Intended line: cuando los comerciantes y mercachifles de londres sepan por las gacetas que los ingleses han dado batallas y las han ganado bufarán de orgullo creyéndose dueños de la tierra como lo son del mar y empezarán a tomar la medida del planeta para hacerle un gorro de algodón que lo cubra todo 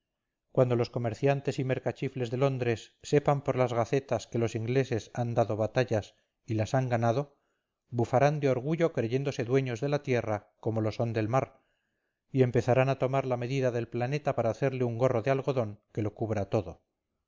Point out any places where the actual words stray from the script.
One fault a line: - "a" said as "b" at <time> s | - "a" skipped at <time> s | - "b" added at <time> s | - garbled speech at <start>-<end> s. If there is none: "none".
none